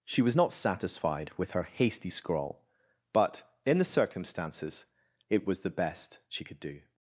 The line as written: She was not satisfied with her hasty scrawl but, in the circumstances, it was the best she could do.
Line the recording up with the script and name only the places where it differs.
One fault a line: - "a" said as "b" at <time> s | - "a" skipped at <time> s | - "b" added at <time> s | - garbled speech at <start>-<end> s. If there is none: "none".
none